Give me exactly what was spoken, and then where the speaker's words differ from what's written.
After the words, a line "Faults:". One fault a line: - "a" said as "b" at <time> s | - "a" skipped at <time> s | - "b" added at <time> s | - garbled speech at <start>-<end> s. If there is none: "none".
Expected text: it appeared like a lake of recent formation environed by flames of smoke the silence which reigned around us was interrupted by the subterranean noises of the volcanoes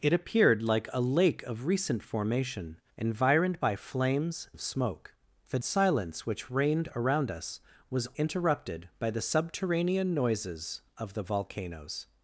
it appeared like a lake of recent formation environed by flames of smoke the silence which reigned around us was interrupted by the subterranean noises of the volcanoes
Faults:
none